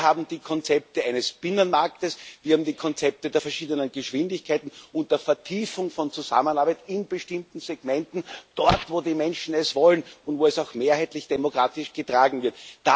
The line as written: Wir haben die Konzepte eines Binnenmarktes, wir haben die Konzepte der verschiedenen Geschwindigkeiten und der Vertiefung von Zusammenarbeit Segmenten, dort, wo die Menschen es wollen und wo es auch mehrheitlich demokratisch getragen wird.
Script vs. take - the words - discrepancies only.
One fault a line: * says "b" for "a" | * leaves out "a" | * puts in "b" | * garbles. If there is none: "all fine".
* puts in "in bestimmten"